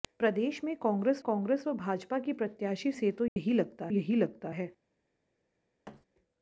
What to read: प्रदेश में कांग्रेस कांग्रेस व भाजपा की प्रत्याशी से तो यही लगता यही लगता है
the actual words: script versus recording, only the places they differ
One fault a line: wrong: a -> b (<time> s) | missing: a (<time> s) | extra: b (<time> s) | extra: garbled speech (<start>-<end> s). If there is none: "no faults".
no faults